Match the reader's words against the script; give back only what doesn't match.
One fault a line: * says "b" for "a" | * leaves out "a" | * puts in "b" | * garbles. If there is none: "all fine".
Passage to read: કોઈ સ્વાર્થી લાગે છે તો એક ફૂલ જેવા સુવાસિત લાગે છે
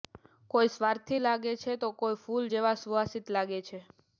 * says "કોઈ" for "એક"